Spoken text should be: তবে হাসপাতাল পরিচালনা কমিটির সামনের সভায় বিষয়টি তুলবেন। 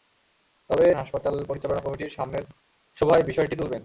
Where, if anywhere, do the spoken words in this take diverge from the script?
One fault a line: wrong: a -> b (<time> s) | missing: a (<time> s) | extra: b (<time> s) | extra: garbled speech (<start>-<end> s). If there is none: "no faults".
no faults